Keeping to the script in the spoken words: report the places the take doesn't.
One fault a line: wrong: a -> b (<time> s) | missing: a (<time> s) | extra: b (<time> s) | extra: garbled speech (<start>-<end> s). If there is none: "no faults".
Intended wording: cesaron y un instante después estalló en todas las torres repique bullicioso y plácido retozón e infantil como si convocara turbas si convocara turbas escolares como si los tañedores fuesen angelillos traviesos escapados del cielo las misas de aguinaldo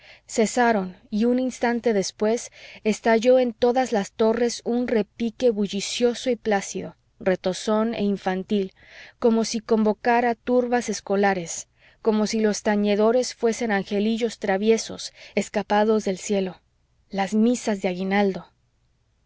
extra: un (4.7 s)
missing: si convocara turbas (10.9 s)